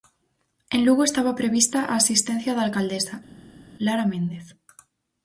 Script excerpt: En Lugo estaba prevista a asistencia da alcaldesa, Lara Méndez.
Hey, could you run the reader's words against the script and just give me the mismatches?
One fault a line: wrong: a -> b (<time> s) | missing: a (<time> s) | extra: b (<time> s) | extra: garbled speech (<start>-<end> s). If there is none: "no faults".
no faults